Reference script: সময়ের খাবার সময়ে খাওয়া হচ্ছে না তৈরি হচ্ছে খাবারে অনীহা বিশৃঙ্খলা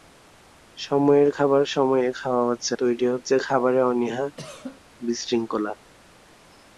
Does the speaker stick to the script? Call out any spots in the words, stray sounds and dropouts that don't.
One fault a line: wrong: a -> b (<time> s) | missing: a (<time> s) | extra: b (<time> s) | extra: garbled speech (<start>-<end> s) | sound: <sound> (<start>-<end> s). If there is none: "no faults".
missing: না (2.7 s)
sound: cough (4.4-4.8 s)